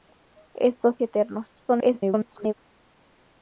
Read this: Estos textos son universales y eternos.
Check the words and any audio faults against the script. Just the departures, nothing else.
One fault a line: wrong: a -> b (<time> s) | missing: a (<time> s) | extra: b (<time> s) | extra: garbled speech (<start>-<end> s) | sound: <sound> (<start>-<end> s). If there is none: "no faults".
missing: textos son universales (1.0 s)
extra: garbled speech (1.7-2.5 s)